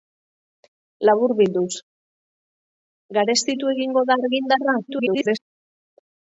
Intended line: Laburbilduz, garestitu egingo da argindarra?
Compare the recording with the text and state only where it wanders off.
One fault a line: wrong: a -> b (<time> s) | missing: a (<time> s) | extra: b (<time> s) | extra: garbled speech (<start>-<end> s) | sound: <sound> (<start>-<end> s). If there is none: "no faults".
extra: garbled speech (4.9-5.4 s)